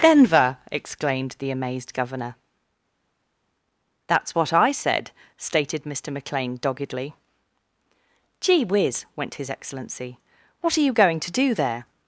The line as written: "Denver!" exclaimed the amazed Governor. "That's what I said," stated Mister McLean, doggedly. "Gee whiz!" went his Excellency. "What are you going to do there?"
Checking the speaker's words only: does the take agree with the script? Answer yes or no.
yes